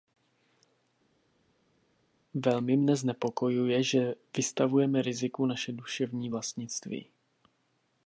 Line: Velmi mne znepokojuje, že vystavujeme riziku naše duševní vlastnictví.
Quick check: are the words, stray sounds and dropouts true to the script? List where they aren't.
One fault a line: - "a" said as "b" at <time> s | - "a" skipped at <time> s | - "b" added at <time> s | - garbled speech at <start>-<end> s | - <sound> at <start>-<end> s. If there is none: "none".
none